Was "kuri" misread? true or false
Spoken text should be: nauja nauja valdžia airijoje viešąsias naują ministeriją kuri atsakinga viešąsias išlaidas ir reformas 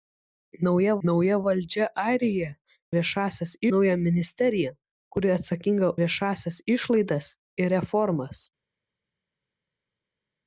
false